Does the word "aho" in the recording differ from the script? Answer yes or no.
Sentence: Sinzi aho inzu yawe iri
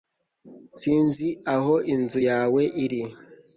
no